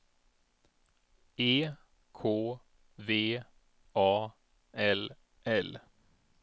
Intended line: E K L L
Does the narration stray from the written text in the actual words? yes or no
yes